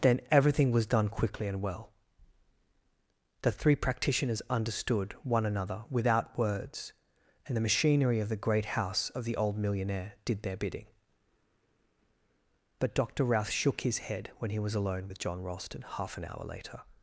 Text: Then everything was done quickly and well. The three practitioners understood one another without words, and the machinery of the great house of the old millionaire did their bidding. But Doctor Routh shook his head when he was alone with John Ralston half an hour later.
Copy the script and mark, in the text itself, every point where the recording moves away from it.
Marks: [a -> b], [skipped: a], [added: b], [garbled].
Then everything was done quickly and well. The three practitioners understood one another without words, and the machinery of the great house of the old millionaire did their bidding. But Doctor Routh shook his head when he was alone with John Ralston half an hour later.